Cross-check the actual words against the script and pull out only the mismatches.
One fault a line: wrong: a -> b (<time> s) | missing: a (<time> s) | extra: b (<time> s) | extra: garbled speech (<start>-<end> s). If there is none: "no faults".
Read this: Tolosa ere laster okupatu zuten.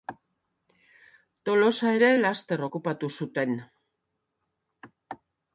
no faults